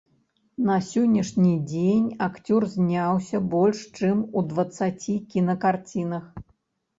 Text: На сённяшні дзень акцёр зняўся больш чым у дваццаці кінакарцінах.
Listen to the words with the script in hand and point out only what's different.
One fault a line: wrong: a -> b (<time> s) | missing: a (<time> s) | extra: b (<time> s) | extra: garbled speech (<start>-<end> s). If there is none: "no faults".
no faults